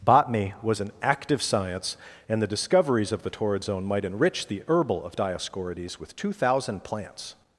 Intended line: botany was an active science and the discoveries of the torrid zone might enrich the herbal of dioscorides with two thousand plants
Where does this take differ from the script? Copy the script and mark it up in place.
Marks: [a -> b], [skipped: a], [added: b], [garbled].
botany was an active science and the discoveries of the torrid zone might enrich the herbal of dioscorides with two thousand plants